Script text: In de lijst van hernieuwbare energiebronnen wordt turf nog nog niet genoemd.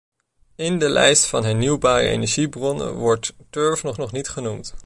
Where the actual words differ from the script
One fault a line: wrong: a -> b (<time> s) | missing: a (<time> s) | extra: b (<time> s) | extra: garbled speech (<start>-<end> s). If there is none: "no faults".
no faults